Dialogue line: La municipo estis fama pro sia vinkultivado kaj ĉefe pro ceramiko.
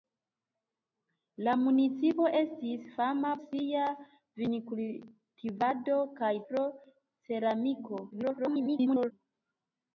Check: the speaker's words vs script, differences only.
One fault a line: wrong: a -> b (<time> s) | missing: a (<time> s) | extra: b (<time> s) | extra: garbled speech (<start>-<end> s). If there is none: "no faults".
missing: pro (3.3 s)
missing: ĉefe (6.3 s)
extra: garbled speech (8.1-9.1 s)